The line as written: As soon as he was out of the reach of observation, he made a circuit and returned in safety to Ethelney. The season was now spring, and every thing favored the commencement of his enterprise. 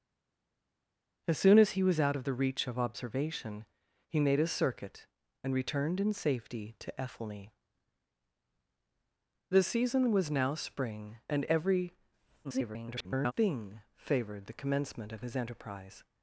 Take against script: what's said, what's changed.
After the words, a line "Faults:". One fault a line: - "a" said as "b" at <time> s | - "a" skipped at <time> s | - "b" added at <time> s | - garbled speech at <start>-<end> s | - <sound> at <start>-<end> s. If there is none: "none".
As soon as he was out of the reach of observation, he made a circuit and returned in safety to Ethelney. The season was now spring, and every [garbled] thing favored the commencement of his enterprise.
Faults:
- garbled speech at 12.4-13.3 s